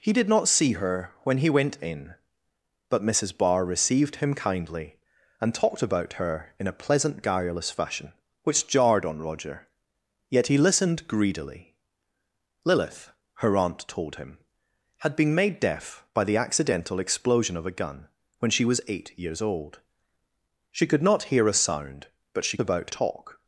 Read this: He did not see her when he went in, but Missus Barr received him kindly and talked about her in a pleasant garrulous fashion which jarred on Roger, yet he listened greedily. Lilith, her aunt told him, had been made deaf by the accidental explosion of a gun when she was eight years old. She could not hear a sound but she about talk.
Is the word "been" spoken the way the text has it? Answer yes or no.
yes